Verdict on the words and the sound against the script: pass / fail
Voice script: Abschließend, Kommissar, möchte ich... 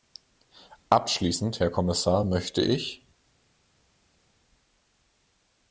fail